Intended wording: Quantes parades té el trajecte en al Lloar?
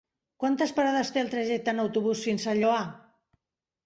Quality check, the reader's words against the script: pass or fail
fail